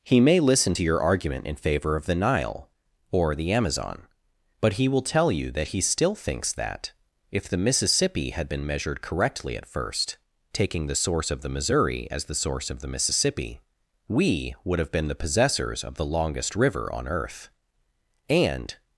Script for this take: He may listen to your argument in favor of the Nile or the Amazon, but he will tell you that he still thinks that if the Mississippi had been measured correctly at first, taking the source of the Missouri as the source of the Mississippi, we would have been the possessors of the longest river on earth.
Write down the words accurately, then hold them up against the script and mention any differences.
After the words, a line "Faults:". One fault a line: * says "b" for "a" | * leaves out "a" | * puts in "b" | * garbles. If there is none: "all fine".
He may listen to your argument in favor of the Nile or the Amazon, but he will tell you that he still thinks that if the Mississippi had been measured correctly at first, taking the source of the Missouri as the source of the Mississippi, we would have been the possessors of the longest river on earth. And
Faults:
* puts in "And"